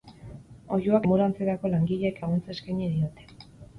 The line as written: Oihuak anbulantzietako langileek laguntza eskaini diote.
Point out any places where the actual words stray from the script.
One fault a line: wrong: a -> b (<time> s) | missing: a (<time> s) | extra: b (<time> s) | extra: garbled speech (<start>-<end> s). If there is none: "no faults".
no faults